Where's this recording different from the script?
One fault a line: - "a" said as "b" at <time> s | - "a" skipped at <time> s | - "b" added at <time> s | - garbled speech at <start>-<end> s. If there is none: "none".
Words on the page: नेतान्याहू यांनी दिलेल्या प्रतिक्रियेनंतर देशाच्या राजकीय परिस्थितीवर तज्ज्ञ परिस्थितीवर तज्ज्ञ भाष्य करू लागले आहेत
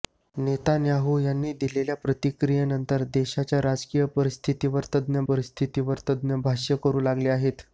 none